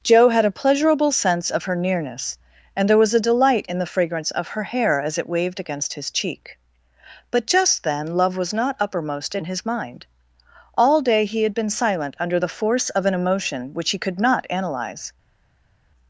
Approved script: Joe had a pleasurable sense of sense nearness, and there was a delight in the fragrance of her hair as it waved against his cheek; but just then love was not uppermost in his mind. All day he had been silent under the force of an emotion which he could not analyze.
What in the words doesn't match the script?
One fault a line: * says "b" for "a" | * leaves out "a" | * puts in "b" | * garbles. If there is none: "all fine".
* says "her" for "sense"